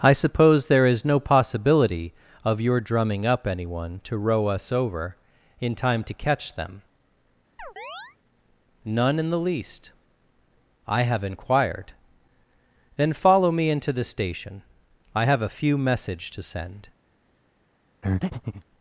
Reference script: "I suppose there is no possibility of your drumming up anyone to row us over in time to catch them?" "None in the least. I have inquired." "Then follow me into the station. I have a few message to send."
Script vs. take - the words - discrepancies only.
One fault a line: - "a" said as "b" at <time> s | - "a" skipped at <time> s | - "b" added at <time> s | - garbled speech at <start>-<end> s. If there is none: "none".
none